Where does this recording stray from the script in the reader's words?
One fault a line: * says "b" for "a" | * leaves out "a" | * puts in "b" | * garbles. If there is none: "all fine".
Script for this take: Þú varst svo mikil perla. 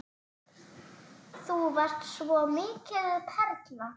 all fine